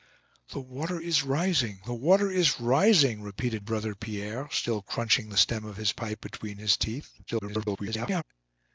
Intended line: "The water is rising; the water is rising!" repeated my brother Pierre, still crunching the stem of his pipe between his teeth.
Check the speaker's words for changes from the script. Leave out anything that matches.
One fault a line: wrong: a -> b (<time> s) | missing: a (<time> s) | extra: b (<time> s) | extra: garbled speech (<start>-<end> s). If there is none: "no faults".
missing: my (3.6 s)
extra: garbled speech (7.3-8.2 s)